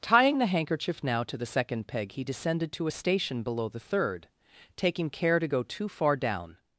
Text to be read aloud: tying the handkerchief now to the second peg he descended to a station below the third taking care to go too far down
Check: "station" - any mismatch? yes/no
no